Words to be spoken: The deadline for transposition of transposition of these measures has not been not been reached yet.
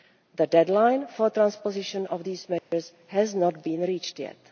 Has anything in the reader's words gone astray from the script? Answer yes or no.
yes